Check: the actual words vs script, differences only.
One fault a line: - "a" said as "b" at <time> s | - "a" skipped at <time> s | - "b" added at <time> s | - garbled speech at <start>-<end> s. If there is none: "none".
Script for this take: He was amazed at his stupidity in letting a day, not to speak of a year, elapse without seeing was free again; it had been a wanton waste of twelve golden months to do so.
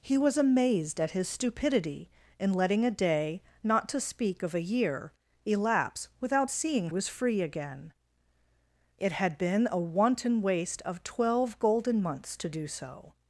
none